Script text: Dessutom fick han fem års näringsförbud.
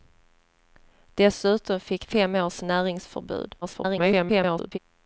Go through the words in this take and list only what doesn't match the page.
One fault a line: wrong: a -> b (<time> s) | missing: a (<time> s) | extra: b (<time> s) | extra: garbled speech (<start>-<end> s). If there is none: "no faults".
missing: han (2.0 s)
extra: garbled speech (3.6-4.8 s)